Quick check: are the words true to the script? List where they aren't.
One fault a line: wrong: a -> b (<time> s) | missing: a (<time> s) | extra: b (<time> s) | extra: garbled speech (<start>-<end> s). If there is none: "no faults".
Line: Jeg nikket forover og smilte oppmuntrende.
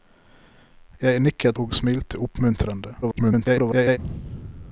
missing: forover (1.6 s)
extra: garbled speech (3.0-4.0 s)